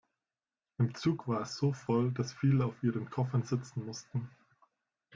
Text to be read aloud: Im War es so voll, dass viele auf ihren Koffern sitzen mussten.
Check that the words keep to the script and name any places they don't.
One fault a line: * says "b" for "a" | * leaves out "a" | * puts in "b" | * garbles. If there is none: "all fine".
* puts in "Zug"